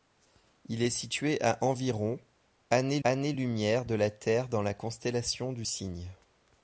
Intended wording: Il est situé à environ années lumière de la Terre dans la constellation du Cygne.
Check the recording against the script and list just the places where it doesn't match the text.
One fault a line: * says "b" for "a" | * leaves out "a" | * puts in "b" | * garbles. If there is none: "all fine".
* puts in "années"